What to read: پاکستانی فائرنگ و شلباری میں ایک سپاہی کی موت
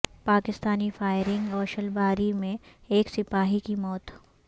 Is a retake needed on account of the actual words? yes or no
no